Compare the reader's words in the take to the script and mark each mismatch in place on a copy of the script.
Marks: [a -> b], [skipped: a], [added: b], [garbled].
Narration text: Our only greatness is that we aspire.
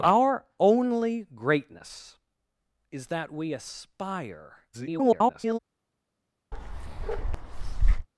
Our only greatness is that we aspire. [garbled]